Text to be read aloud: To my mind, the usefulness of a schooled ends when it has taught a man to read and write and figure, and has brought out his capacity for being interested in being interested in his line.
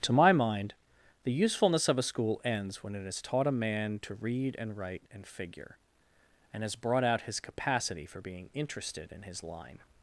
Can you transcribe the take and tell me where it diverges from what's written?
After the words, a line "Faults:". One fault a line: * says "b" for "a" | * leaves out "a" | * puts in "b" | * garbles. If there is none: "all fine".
To my mind, the usefulness of a school ends when it has taught a man to read and write and figure, and has brought out his capacity for being interested in his line.
Faults:
* says "school" for "schooled"
* leaves out "being interested in"